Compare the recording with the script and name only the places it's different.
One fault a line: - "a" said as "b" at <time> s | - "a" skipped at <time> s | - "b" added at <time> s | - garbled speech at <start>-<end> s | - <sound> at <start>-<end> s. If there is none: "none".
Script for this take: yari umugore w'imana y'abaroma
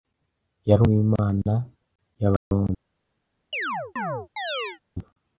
- "umugore" skipped at 0.8 s
- dropout at 2.4-2.5 s
- chirp at 3.5-4.8 s